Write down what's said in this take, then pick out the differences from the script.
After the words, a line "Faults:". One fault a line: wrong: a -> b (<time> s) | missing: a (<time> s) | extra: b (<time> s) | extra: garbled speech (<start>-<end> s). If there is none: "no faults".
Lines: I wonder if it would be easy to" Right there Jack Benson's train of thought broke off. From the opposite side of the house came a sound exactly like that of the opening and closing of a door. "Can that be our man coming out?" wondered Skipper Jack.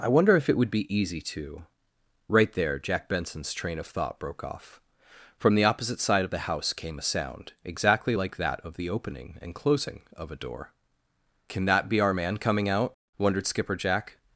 I wonder if it would be easy to" Right there Jack Benson's train of thought broke off. From the opposite side of the house came a sound exactly like that of the opening and closing of a door. "Can that be our man coming out?" wondered Skipper Jack.
Faults:
no faults